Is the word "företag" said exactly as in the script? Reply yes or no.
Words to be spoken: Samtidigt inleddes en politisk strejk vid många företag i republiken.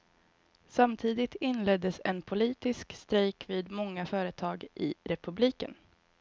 yes